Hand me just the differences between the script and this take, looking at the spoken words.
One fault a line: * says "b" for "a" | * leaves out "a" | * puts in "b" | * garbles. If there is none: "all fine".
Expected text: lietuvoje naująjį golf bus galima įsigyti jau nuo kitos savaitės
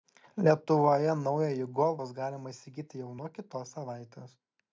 all fine